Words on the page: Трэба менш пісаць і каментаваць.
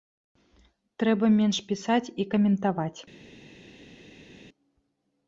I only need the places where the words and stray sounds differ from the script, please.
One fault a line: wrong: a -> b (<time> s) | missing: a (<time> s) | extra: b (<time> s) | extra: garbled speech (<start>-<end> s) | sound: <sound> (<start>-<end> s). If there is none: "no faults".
no faults